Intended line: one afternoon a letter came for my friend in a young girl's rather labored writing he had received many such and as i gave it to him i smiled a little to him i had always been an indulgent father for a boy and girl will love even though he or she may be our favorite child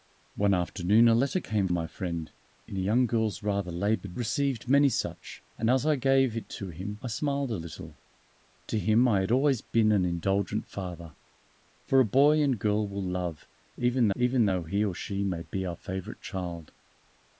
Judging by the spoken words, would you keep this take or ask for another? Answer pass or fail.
fail